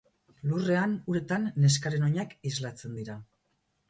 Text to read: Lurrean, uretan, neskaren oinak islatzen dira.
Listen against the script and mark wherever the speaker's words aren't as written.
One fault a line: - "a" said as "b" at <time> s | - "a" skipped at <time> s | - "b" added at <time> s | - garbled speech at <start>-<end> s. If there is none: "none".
none